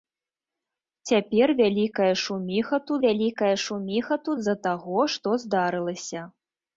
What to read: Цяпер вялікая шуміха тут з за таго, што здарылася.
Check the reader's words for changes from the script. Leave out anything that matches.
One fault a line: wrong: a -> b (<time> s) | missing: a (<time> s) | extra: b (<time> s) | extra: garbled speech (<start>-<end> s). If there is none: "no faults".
extra: вялікая шуміха тут (3.0 s)